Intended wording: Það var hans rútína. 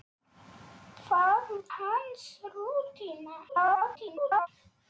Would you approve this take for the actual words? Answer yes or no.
no